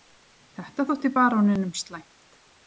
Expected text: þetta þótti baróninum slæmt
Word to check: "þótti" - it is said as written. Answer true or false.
true